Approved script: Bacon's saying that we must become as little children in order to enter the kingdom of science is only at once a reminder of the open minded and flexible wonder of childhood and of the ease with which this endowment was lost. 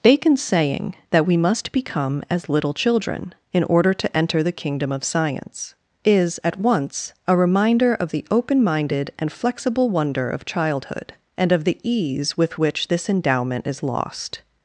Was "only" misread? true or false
true